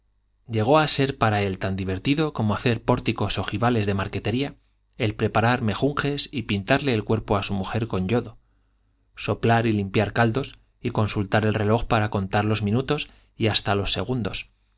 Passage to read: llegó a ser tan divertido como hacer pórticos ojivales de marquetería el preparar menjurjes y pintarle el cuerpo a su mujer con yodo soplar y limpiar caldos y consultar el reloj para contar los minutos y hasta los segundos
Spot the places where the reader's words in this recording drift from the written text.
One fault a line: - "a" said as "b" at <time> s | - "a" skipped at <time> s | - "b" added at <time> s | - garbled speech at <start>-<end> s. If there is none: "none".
- "para él" added at 1.2 s